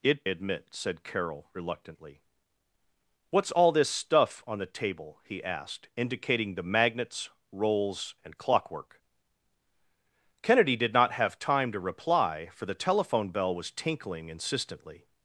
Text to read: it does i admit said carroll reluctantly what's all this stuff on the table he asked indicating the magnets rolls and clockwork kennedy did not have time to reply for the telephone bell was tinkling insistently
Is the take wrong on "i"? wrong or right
wrong